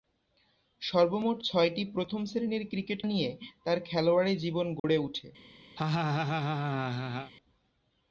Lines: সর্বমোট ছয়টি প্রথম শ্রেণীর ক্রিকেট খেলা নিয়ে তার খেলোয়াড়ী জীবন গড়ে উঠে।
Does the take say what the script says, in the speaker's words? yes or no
no